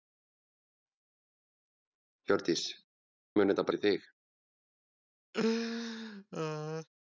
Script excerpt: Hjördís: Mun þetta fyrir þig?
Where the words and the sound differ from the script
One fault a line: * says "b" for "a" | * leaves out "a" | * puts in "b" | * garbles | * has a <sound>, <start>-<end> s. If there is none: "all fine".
* has a laugh, 5.3-6.9 s